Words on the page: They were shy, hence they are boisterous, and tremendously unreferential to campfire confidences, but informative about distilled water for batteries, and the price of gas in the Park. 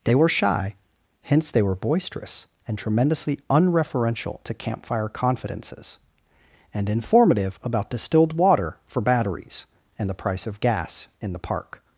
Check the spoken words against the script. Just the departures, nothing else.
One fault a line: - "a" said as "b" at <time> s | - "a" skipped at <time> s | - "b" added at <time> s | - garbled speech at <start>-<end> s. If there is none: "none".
- "are" said as "were" at 1.6 s
- "but" said as "and" at 6.7 s